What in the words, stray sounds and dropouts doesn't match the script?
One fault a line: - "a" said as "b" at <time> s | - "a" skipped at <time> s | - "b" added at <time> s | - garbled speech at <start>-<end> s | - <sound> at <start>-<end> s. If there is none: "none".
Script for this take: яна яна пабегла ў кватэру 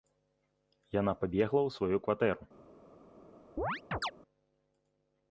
- "яна" skipped at 1.1 s
- "сваю" added at 1.8 s
- chirp at 3.6-4.1 s